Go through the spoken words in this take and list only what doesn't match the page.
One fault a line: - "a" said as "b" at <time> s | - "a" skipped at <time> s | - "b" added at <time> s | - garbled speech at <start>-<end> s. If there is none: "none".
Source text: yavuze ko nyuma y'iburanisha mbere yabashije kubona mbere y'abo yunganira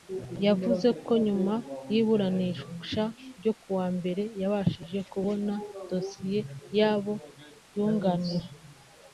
- "ryo kuwa" added at 3.4 s
- "mbere" said as "dosiye" at 5.9 s